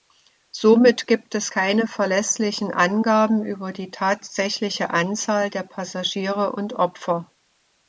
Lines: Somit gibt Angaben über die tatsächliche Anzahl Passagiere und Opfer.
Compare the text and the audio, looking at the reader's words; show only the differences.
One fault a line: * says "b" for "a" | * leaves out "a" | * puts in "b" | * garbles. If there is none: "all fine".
* puts in "es keine verlässlichen"
* puts in "der"